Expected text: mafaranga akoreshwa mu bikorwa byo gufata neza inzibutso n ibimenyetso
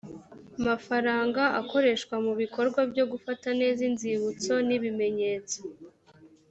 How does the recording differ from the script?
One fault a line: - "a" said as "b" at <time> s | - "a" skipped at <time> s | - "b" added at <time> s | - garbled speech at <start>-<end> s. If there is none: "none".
none